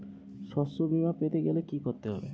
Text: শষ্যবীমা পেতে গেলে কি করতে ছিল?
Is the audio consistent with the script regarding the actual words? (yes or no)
no